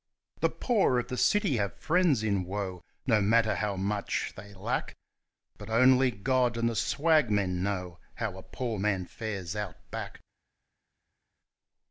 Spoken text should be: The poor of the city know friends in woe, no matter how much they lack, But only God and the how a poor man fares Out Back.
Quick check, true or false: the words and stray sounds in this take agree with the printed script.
false